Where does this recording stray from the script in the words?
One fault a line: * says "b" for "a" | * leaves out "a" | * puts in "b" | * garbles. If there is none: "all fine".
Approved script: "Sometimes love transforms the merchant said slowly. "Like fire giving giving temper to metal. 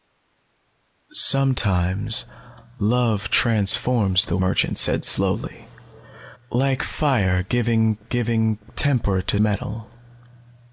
all fine